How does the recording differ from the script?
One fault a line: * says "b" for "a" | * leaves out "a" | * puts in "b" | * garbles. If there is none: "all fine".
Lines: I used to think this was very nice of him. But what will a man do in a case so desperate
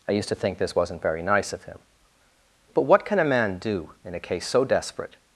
* says "wasn't" for "was"
* says "can" for "will"